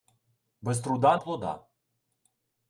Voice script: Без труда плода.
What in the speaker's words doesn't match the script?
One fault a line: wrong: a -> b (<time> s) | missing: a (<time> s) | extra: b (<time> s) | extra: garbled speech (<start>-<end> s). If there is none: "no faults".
no faults